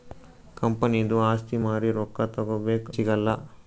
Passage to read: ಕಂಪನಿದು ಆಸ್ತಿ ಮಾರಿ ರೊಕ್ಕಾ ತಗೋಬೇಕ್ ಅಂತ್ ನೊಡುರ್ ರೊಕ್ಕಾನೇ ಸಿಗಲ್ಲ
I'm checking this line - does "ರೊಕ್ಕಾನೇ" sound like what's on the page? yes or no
no